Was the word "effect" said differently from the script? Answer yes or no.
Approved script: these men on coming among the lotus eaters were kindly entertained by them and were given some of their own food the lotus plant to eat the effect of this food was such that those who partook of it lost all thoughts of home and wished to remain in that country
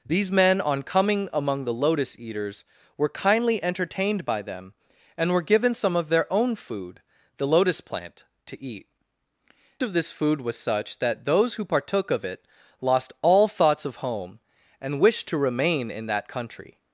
yes